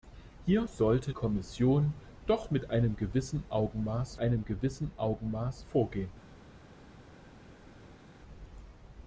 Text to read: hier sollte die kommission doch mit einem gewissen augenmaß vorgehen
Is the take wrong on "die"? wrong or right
wrong